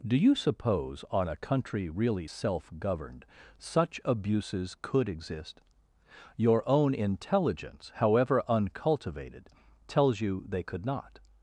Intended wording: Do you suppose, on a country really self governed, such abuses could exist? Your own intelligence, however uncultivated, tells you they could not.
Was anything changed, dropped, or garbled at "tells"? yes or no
no